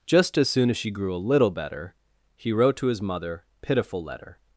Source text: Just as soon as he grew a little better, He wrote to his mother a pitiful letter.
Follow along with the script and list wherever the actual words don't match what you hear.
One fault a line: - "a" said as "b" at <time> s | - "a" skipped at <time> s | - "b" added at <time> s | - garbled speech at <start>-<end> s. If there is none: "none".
- "he" said as "she" at 0.8 s
- "a" skipped at 3.4 s